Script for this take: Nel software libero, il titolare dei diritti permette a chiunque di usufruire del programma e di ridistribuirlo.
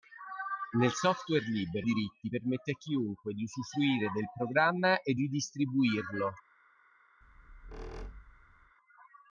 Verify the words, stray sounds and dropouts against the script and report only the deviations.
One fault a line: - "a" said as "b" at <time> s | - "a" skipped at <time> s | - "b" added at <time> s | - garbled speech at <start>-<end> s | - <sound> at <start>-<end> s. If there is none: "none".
- "il titolare dei" skipped at 1.9 s
- "di" skipped at 5.1 s
- squeak at 7.2-8.7 s